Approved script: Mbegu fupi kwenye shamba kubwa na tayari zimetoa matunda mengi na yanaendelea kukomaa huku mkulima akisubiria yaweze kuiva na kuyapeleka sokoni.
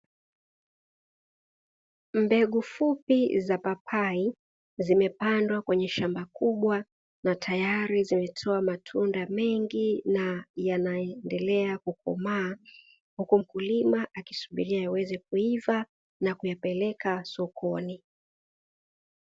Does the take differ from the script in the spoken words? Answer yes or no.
yes